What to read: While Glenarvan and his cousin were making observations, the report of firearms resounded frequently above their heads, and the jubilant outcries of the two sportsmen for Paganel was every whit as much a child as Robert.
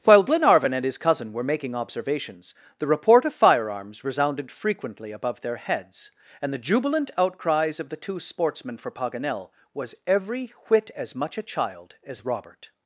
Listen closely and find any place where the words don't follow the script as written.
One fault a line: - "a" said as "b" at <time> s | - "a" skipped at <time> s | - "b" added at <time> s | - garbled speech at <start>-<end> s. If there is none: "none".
none